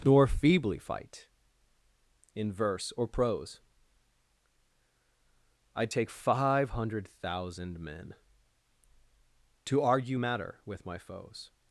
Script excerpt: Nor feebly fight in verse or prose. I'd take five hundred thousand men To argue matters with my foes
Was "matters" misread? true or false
true